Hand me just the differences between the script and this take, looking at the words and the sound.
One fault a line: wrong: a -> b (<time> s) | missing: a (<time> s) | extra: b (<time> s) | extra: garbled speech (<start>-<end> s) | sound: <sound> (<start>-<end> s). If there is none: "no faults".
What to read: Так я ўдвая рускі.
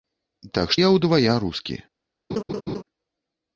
sound: laugh (2.3-2.8 s)